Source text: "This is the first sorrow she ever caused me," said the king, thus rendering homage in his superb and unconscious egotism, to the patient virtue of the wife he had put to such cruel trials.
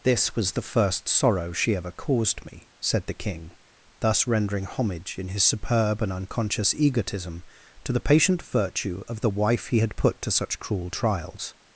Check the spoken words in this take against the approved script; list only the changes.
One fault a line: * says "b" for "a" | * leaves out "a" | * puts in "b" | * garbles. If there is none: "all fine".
* says "was" for "is"